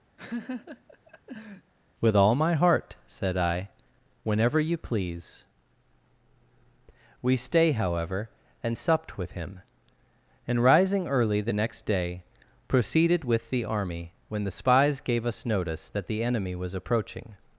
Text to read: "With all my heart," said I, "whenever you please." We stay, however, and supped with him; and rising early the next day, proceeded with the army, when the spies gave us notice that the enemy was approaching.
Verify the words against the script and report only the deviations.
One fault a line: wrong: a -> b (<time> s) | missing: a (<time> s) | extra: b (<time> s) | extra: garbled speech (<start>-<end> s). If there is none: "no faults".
no faults